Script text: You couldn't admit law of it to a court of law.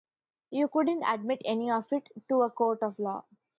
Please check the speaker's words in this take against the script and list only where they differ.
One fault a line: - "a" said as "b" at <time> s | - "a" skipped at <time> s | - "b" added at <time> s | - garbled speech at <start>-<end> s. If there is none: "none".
- "law" said as "any" at 1.4 s